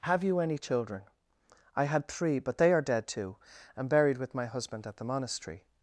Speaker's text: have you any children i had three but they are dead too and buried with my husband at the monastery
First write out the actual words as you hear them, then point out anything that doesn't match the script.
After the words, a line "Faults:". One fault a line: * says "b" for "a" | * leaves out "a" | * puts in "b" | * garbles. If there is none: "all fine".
have you any children i had three but they are dead too and buried with my husband at the monastery
Faults:
all fine